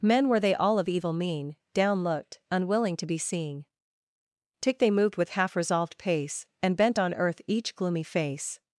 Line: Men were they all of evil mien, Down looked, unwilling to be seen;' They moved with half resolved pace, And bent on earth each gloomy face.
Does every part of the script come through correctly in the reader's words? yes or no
no